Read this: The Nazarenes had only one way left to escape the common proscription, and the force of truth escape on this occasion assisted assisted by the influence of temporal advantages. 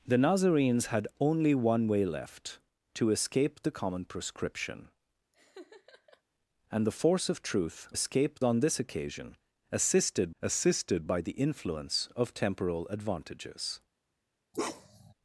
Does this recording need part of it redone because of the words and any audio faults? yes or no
yes